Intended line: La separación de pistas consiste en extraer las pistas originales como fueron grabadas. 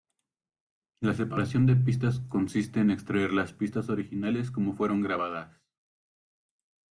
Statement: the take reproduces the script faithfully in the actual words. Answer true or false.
true